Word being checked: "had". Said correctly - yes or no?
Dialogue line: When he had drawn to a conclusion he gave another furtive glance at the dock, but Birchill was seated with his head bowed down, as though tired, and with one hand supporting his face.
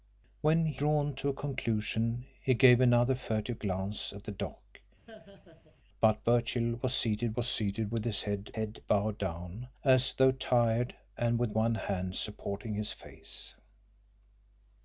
no